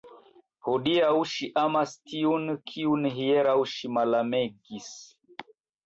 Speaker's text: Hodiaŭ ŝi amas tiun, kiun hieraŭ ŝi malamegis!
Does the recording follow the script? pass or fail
pass